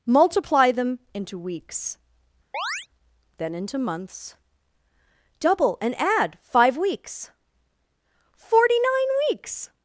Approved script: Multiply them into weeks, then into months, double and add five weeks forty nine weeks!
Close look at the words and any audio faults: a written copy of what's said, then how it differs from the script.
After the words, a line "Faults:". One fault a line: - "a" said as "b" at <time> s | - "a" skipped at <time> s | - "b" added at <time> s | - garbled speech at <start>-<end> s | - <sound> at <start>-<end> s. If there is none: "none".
Multiply them into weeks, then into months, double and add five weeks forty nine weeks!
Faults:
- chirp at 2.5-2.9 s